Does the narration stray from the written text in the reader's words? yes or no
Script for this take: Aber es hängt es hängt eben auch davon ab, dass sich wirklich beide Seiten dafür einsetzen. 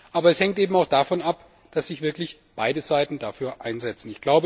yes